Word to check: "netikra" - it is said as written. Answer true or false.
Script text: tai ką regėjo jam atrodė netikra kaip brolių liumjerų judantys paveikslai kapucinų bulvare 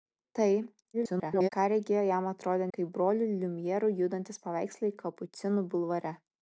false